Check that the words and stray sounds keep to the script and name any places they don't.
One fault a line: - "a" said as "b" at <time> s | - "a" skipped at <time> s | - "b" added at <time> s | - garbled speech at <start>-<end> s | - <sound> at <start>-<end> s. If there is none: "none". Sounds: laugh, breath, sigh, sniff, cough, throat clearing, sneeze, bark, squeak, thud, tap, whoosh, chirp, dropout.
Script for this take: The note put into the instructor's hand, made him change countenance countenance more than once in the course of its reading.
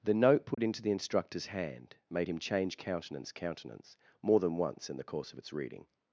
- dropout at 0.5-0.6 s